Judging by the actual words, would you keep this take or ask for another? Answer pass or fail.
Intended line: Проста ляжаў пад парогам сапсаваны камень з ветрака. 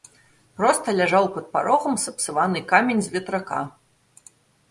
pass